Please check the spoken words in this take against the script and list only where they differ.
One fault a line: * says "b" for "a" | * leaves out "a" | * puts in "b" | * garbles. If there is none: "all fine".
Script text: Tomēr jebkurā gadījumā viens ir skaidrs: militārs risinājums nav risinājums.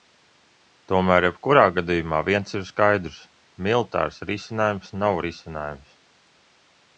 all fine